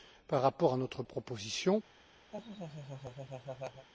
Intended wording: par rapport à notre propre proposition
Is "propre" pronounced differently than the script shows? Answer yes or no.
yes